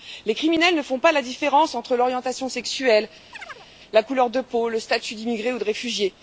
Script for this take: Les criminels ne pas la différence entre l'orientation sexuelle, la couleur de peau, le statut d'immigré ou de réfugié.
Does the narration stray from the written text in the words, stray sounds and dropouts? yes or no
yes